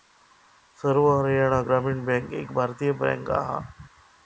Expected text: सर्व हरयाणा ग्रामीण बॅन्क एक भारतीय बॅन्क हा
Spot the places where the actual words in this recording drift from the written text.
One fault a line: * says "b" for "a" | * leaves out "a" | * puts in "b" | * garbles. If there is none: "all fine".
all fine